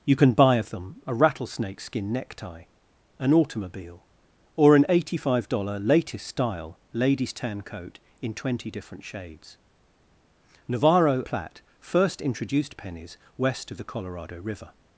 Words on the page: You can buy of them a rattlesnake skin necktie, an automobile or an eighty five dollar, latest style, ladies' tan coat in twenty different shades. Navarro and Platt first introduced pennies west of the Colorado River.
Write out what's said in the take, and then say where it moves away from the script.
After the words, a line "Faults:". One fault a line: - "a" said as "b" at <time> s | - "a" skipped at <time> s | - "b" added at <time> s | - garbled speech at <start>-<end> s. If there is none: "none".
You can buy of them a rattlesnake skin necktie, an automobile or an eighty five dollar, latest style, ladies' tan coat in twenty different shades. Navarro Platt first introduced pennies west of the Colorado River.
Faults:
- "and" skipped at 11.2 s